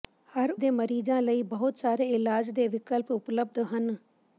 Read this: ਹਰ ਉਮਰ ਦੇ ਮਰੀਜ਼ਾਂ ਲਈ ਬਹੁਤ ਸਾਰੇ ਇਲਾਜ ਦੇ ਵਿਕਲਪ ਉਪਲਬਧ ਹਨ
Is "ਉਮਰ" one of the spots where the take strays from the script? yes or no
yes